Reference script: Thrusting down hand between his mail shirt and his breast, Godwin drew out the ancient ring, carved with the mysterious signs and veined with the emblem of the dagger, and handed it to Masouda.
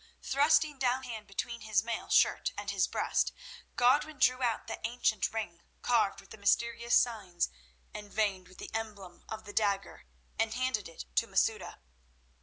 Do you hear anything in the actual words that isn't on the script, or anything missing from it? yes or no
no